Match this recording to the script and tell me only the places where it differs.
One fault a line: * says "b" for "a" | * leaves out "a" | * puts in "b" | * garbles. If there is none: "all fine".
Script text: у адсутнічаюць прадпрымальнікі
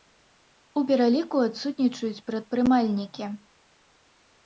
* puts in "пераліку"